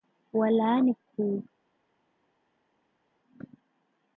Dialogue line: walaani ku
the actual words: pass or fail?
pass